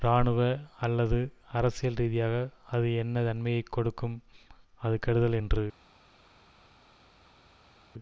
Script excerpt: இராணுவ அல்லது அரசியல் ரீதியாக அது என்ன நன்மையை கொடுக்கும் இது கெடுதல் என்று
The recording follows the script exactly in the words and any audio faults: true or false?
false